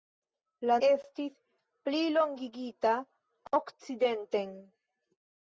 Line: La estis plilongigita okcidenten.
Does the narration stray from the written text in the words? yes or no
no